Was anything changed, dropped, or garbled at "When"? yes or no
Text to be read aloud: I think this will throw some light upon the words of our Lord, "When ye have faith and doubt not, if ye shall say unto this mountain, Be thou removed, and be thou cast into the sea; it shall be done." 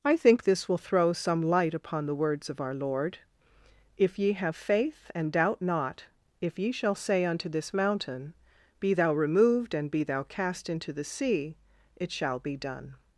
yes